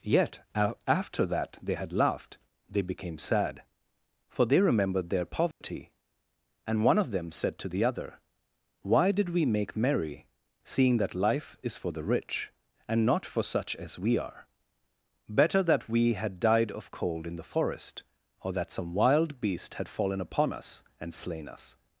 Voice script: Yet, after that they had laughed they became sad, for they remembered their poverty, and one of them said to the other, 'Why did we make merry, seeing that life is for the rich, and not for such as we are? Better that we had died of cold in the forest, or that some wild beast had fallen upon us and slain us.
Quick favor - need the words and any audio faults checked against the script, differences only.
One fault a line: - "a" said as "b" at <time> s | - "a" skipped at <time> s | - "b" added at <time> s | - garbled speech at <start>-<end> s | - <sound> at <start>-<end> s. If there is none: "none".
- dropout at 5.5-5.6 s